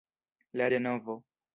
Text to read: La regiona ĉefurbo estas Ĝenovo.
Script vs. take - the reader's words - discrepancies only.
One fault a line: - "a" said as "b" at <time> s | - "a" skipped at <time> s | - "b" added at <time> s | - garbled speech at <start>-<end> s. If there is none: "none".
- "regiona ĉefurbo estas" skipped at 0.7 s